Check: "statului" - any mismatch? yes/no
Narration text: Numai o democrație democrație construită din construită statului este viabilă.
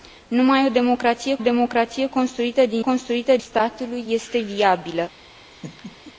no